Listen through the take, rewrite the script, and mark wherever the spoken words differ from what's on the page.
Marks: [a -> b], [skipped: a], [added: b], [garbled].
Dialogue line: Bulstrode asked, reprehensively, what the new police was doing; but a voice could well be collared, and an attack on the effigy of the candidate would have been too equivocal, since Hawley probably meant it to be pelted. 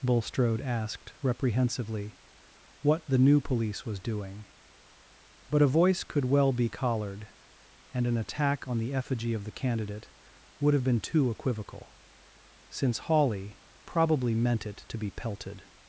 Bulstrode asked, reprehensively, what the new police was doing; but a voice could well be collared, and an attack on the effigy of the candidate would have been too equivocal, since Hawley probably meant it to be pelted.